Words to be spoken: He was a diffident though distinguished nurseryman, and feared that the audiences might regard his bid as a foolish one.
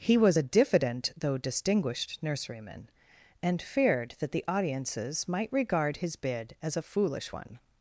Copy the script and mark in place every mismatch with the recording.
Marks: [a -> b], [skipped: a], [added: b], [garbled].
He was a diffident though distinguished nurseryman, and feared that the audiences might regard his bid as a foolish one.